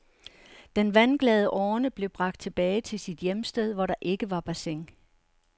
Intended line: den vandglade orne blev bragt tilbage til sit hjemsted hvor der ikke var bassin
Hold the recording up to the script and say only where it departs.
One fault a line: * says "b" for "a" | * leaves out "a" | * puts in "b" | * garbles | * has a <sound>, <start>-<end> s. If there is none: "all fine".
all fine